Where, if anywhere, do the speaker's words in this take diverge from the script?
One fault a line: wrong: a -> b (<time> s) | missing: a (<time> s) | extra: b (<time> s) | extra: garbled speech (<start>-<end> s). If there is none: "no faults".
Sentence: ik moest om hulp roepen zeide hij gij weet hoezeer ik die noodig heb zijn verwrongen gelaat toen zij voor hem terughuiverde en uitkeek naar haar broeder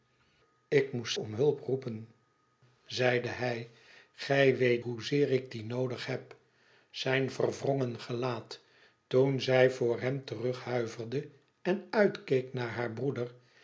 no faults